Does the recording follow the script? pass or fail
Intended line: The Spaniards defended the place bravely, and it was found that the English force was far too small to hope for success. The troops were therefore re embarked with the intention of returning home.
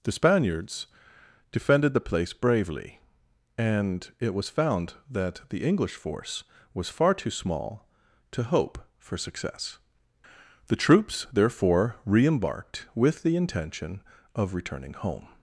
fail